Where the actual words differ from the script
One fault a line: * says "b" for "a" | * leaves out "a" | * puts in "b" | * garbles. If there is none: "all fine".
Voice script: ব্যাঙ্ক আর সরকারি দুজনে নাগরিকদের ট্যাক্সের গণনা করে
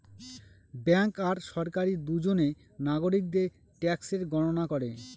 all fine